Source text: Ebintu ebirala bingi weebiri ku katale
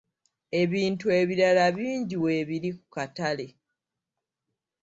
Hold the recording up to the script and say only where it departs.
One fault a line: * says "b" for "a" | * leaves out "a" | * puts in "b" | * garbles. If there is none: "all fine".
all fine